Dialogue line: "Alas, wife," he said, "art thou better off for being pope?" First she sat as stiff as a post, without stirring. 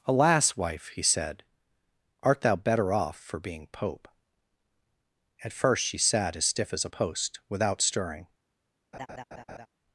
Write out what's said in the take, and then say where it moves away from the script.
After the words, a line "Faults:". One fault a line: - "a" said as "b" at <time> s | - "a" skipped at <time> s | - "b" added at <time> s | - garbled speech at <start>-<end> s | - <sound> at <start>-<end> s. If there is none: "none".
"Alas, wife," he said, "art thou better off for being pope?" At first she sat as stiff as a post, without stirring.
Faults:
- "At" added at 5.4 s
- laugh at 8.9-9.7 s